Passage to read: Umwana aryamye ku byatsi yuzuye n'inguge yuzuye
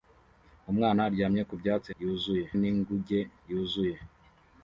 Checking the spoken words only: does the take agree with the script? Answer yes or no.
yes